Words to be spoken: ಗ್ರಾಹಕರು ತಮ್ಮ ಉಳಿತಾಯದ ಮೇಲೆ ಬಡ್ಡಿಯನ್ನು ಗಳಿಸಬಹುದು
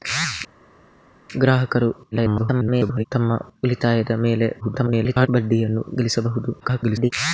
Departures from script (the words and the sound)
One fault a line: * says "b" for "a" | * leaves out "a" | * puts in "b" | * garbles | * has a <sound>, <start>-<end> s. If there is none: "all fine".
* garbles
* garbles
* garbles